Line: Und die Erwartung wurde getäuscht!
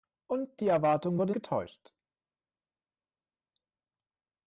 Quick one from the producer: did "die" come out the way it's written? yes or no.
yes